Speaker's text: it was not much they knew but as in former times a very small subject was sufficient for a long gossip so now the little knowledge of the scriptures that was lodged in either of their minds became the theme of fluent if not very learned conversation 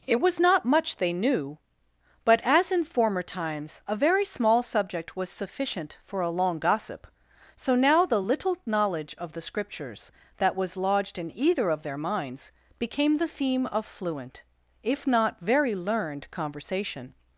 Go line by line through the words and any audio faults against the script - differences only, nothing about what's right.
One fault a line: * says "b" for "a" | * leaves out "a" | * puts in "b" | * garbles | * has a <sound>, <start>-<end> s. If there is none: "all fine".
all fine